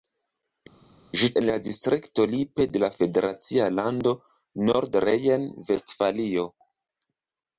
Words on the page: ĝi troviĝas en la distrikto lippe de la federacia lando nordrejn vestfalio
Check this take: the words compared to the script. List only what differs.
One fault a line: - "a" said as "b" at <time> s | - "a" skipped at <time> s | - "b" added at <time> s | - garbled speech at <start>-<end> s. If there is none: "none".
- "troviĝas" skipped at 1.3 s